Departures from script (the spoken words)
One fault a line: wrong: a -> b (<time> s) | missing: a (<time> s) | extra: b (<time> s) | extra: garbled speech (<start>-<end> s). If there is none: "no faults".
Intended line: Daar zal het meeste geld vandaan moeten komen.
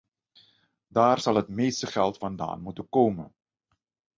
no faults